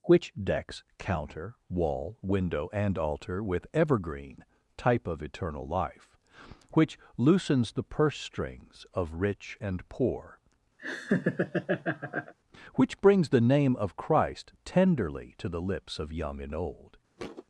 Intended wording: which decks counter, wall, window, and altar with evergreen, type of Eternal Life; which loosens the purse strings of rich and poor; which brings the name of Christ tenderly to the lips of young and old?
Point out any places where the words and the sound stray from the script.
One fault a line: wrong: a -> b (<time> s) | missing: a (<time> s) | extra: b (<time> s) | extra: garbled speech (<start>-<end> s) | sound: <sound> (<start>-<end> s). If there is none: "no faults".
sound: laugh (10.8-12.3 s)
sound: thud (17.2-17.4 s)